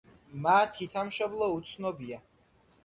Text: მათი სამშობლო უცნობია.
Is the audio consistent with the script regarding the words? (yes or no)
yes